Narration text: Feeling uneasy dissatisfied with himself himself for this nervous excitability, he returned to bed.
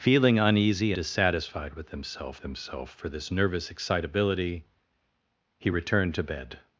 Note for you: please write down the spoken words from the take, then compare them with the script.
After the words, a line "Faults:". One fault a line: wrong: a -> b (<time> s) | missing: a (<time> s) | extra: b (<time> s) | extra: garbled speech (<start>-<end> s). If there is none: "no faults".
Feeling uneasy dissatisfied with himself himself for this nervous excitability, he returned to bed.
Faults:
no faults